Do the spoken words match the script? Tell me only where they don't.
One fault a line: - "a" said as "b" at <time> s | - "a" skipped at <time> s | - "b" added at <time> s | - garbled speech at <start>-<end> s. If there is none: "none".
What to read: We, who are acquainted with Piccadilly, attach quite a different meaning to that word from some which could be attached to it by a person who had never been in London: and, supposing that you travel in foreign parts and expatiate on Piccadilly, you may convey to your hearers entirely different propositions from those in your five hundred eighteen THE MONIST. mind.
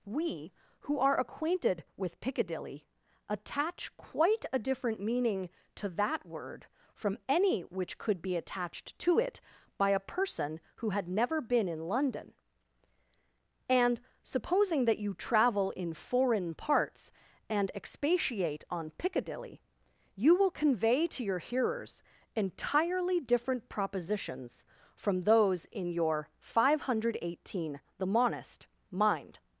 - "some" said as "any" at 7.3 s
- "may" said as "will" at 20.4 s